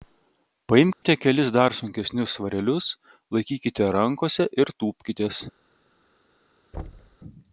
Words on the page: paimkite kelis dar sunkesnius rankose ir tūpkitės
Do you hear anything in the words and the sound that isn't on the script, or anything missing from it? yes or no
yes